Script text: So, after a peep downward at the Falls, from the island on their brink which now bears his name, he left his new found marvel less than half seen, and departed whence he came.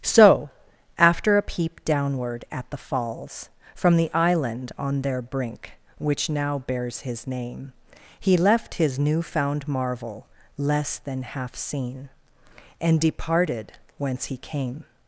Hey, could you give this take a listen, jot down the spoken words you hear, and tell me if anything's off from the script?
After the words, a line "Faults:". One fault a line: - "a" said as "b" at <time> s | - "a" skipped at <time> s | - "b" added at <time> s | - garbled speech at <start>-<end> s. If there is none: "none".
So, after a peep downward at the Falls, from the island on their brink which now bears his name, he left his new found marvel less than half seen, and departed whence he came.
Faults:
none